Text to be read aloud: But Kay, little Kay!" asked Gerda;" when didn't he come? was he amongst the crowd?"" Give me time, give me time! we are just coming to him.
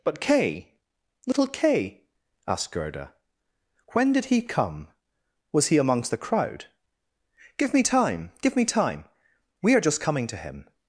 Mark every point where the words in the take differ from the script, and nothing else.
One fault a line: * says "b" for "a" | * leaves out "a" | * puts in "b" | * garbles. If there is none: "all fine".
* says "did" for "didn't"